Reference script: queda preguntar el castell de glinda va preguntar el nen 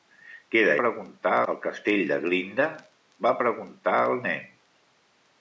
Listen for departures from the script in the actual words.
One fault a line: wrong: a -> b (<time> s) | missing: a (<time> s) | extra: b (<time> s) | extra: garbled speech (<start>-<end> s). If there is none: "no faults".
no faults